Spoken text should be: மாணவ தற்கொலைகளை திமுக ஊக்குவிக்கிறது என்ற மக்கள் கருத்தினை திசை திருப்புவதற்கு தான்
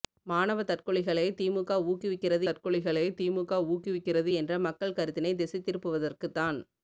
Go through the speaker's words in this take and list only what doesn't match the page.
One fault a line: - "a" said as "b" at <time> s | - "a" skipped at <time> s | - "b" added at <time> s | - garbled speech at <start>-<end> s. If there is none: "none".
- "தற்கொலைகளை திமுக ஊக்குவிக்கிறது" added at 2.4 s